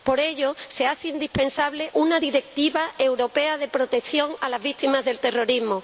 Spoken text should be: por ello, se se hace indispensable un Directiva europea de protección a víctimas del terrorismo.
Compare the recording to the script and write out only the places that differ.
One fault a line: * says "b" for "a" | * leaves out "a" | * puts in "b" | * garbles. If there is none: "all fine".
* leaves out "se"
* says "una" for "un"
* puts in "las"